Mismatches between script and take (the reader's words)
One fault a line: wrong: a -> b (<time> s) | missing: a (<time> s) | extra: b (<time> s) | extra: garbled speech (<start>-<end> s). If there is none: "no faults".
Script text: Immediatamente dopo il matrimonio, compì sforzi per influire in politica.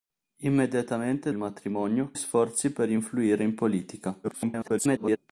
missing: dopo (1.3 s)
missing: compì (2.1 s)
extra: garbled speech (4.2-5.2 s)